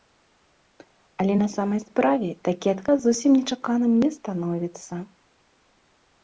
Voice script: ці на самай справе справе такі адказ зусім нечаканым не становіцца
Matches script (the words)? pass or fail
fail